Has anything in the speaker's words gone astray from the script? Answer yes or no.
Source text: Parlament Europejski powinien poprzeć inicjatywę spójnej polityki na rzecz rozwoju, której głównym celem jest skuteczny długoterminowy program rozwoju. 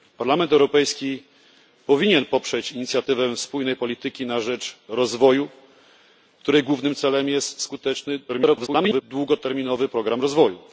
yes